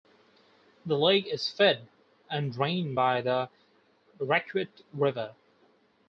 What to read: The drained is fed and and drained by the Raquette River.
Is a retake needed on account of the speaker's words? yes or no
yes